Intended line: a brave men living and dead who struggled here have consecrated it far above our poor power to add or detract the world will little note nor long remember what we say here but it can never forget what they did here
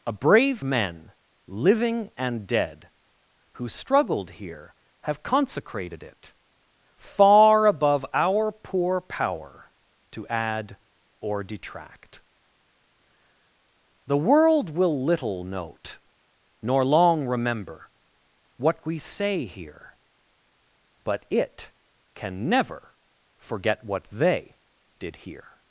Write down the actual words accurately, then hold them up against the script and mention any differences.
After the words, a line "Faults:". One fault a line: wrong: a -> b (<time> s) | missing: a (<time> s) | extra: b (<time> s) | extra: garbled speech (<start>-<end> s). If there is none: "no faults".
a brave men living and dead who struggled here have consecrated it far above our poor power to add or detract the world will little note nor long remember what we say here but it can never forget what they did here
Faults:
no faults